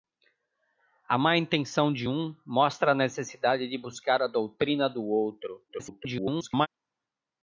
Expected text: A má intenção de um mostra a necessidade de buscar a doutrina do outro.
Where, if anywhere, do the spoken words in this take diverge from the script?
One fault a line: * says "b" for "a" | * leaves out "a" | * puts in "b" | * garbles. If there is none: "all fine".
* garbles